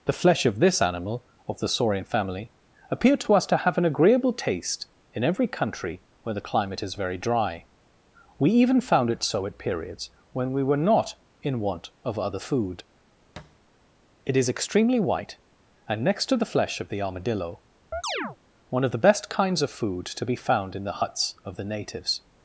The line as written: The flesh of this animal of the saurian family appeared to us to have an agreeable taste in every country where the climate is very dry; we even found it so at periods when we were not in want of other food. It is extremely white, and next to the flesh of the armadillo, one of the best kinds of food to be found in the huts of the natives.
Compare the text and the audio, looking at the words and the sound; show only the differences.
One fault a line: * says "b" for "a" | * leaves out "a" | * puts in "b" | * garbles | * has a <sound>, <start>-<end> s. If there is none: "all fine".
* has a thud, 13.4-13.6 s
* has a chirp, 17.9-18.4 s